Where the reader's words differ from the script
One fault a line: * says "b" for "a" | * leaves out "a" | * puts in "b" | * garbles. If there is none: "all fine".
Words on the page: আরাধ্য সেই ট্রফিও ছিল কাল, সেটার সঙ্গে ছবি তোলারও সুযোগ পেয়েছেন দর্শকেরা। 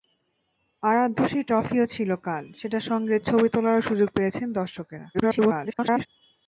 * garbles